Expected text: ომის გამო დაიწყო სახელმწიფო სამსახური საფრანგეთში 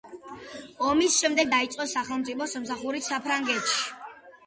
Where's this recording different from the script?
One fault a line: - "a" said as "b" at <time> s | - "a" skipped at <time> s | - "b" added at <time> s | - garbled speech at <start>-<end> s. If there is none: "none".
- "გამო" said as "შემდეგ" at 1.2 s